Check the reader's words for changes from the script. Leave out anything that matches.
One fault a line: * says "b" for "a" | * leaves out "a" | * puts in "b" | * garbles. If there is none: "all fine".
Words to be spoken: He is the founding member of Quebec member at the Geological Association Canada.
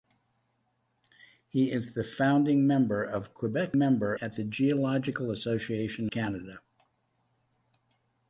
all fine